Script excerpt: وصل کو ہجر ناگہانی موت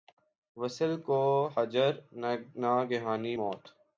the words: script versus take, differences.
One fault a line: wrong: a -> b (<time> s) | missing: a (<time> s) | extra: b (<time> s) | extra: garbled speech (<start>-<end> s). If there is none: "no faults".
no faults